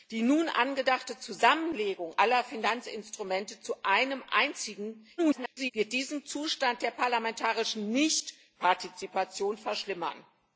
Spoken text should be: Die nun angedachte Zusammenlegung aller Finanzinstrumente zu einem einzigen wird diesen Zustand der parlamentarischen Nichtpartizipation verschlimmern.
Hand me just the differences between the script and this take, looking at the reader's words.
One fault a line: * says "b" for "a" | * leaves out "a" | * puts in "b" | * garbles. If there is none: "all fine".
* garbles